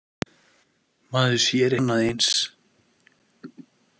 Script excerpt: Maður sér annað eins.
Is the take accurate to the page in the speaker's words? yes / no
yes